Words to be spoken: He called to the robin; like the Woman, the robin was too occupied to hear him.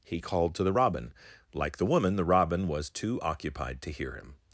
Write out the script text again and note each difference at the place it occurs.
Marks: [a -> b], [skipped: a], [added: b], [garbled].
He called to the robin; like the Woman, the robin was too occupied to hear him.